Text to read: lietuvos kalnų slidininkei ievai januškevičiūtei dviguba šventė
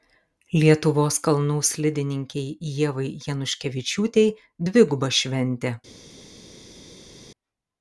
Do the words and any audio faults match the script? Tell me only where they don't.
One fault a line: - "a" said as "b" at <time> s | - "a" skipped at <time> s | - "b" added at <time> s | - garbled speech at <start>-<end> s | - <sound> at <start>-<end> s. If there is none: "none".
none